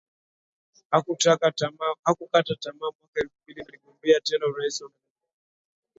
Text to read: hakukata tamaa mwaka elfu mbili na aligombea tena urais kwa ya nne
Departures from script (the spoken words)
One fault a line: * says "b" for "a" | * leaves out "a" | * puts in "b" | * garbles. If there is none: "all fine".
all fine